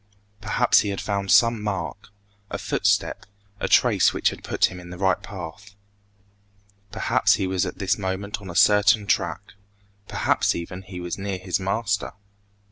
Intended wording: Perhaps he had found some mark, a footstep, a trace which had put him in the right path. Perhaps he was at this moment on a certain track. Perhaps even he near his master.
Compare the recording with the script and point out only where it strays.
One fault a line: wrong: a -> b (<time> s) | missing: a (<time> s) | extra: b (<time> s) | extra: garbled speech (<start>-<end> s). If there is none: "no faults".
extra: was (11.0 s)